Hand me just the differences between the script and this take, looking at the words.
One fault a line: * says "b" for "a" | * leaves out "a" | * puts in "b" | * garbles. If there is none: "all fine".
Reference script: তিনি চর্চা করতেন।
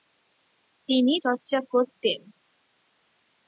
all fine